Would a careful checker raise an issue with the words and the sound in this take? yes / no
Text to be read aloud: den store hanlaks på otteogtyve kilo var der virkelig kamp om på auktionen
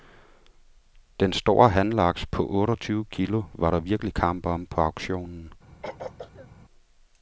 yes